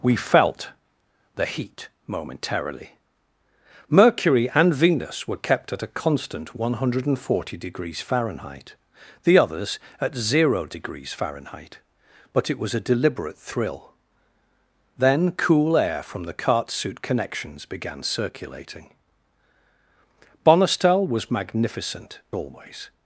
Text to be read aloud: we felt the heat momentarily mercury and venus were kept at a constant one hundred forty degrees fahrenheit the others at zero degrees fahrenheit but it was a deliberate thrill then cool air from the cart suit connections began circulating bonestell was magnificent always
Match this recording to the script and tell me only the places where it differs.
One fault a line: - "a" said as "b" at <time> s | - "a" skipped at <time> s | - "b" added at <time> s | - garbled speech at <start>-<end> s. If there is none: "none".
none